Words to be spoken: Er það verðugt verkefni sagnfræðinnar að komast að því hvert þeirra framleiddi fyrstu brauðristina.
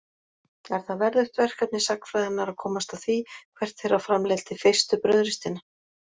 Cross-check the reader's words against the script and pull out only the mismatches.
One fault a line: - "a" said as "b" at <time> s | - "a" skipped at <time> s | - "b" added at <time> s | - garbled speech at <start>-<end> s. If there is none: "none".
none